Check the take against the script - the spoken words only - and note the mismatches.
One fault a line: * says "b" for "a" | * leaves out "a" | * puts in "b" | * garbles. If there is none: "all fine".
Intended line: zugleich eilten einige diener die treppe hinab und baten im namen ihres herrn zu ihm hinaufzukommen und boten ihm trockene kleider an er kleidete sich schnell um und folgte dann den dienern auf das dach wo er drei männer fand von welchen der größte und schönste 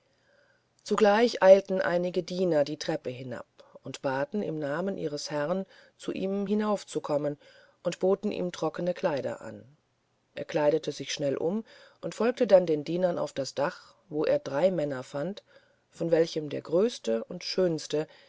all fine